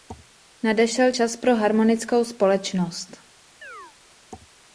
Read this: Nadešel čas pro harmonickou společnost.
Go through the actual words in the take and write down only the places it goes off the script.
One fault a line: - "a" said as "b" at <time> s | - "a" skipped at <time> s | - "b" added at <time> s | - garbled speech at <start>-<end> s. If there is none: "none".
none